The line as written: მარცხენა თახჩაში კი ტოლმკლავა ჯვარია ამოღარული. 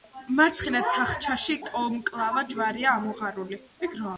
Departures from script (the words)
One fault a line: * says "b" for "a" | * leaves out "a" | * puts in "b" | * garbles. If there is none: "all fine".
* leaves out "კი"